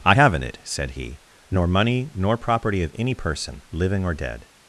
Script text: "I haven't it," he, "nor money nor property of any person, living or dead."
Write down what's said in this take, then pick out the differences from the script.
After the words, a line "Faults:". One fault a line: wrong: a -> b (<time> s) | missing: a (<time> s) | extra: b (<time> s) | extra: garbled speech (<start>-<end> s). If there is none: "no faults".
"I haven't it," said he, "nor money nor property of any person, living or dead."
Faults:
extra: said (0.6 s)